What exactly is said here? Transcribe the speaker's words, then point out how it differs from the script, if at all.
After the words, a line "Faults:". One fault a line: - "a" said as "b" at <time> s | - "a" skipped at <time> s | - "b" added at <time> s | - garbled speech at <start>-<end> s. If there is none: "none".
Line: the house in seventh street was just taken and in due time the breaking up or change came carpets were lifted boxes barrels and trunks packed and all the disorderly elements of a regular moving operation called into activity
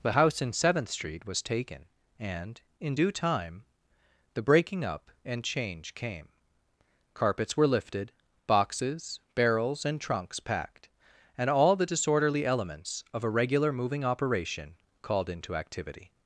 the house in seventh street was taken and in due time the breaking up and change came carpets were lifted boxes barrels and trunks packed and all the disorderly elements of a regular moving operation called into activity
Faults:
- "just" skipped at 1.4 s
- "or" said as "and" at 5.2 s